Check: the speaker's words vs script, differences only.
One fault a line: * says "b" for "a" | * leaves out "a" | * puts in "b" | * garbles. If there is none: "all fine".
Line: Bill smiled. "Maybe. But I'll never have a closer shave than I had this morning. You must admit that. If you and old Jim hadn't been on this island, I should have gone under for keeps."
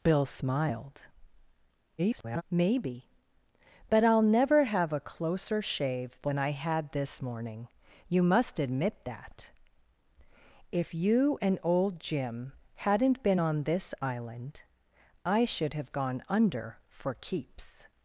* garbles